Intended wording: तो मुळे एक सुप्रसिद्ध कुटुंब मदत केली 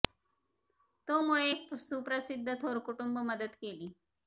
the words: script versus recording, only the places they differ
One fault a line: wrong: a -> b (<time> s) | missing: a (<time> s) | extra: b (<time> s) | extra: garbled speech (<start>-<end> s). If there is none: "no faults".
extra: थोर (2.6 s)